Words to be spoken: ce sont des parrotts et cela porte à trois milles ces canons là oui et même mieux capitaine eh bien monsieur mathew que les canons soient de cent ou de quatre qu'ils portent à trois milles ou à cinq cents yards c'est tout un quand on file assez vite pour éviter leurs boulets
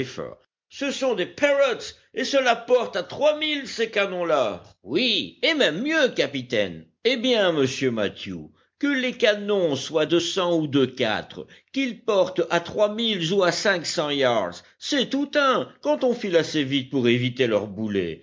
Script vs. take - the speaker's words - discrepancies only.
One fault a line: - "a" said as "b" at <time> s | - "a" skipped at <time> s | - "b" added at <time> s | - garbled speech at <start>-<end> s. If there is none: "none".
none